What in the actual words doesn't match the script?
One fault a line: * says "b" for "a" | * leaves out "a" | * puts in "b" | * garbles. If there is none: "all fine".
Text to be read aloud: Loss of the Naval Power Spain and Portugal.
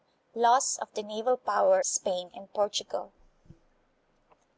all fine